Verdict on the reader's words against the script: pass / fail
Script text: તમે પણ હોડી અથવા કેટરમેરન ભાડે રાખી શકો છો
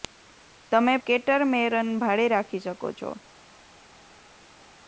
fail